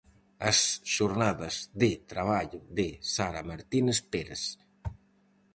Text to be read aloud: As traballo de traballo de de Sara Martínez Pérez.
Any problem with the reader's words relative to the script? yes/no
yes